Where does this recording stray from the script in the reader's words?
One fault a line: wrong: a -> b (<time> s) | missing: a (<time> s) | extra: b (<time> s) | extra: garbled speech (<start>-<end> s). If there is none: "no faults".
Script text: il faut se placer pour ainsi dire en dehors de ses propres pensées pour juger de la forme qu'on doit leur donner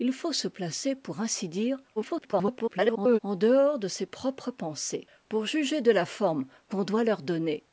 extra: garbled speech (2.0-3.2 s)